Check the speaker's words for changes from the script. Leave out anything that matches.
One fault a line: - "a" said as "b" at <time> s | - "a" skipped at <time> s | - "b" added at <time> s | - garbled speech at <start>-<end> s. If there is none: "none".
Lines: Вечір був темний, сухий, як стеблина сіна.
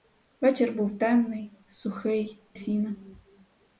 - "як стеблина" skipped at 2.4 s